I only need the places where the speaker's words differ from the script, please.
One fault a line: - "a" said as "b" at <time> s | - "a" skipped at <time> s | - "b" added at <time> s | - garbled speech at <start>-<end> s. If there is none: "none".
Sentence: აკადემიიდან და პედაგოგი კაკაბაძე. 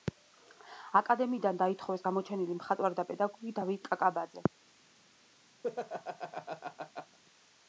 - "დაითხოვეს გამოჩენილი მხატვარი" added at 1.6 s
- "დავით" added at 3.6 s